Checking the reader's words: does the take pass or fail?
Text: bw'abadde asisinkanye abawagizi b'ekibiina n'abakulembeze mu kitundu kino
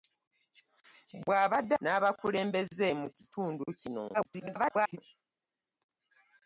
fail